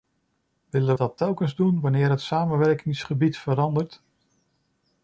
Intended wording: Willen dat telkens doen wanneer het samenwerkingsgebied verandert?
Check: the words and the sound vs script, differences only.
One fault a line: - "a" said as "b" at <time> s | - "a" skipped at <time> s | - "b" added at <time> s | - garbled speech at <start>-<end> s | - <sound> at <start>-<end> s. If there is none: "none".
none